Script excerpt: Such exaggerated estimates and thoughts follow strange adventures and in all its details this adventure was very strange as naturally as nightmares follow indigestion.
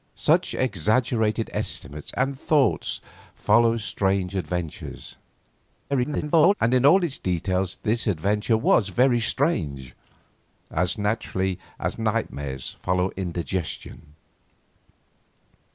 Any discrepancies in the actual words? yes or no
yes